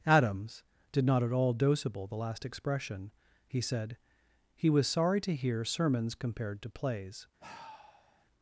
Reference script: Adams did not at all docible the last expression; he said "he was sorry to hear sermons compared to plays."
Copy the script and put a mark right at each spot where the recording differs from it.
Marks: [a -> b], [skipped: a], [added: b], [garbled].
Adams did not at all docible the last expression; he said "he was sorry to hear sermons compared to plays."